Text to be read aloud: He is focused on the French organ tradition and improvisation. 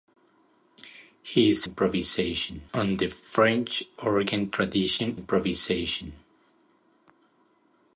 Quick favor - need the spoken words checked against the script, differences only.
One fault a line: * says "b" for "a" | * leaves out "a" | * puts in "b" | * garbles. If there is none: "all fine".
* says "improvisation" for "focused"
* leaves out "and"